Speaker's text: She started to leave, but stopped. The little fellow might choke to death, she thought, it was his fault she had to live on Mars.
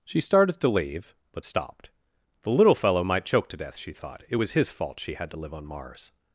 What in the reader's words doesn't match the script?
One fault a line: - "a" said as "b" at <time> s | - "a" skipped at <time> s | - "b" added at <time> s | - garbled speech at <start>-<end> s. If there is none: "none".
none